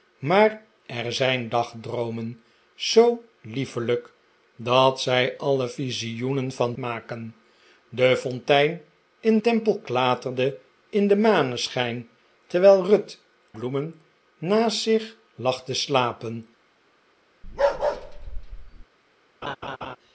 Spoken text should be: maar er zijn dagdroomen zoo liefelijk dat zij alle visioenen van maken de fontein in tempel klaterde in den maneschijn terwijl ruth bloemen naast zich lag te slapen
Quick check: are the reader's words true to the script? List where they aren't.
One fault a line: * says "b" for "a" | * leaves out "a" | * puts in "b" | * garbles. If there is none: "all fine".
all fine